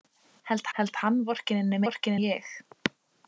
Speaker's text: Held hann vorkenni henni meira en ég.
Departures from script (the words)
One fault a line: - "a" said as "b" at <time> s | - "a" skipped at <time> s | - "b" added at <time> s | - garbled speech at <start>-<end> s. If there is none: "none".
- "held" added at 0.8 s
- "meira" said as "vorkenni" at 1.9 s